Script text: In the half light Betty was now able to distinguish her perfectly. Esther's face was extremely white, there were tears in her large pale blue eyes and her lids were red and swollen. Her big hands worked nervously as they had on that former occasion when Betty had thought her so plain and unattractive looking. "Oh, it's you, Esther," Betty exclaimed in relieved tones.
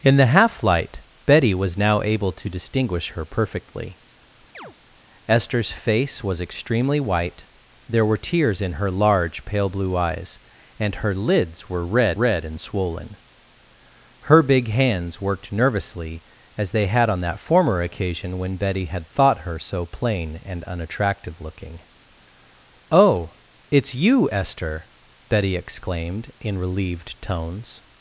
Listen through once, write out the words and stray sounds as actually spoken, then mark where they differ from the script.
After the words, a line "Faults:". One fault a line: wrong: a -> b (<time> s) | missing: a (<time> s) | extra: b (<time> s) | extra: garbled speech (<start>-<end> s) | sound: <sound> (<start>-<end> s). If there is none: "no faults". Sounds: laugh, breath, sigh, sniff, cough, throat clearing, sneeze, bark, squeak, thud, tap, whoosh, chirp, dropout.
In the half light Betty was now able to distinguish her perfectly. Esther's face was extremely white, there were tears in her large pale blue eyes and her lids were red red and swollen. Her big hands worked nervously as they had on that former occasion when Betty had thought her so plain and unattractive looking. "Oh, it's you, Esther," Betty exclaimed in relieved tones.
Faults:
sound: chirp (4.5-4.7 s)
extra: red (12.1 s)